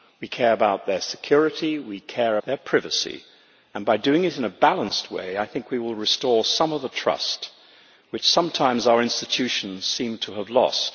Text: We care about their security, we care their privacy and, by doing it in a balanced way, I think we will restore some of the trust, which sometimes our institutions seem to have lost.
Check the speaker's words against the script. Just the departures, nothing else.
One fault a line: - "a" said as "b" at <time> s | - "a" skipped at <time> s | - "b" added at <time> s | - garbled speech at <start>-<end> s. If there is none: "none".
none